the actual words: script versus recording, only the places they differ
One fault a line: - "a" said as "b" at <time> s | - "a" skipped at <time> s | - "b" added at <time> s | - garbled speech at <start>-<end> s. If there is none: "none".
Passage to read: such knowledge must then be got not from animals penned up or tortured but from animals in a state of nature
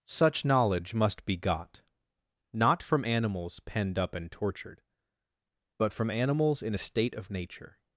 - "then" skipped at 1.2 s
- "or" said as "and" at 4.2 s